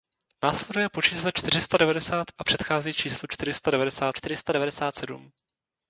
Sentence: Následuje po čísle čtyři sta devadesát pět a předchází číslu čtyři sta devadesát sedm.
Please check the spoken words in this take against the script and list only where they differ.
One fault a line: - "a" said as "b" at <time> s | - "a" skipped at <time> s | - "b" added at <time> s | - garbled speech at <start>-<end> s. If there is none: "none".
- "pět" skipped at 2.3 s
- "čtyři sta devadesát" added at 4.2 s